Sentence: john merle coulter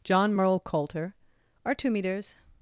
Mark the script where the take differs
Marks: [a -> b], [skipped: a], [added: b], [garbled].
john merle coulter [added: are two meters]